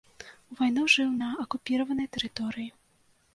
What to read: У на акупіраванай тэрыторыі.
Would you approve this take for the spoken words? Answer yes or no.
no